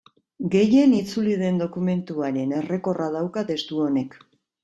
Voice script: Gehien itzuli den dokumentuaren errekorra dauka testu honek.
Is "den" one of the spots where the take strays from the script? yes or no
no